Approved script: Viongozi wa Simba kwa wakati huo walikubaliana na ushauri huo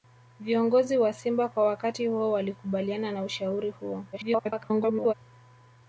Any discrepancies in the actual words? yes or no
yes